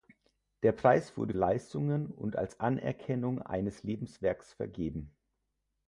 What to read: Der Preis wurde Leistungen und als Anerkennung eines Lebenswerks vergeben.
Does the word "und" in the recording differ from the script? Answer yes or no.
no